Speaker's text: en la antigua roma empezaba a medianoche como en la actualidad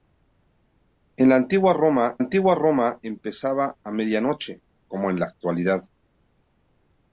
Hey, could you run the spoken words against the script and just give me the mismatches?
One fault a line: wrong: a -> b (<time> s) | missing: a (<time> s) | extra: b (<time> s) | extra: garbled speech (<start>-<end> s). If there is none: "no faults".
extra: antigua roma (2.2 s)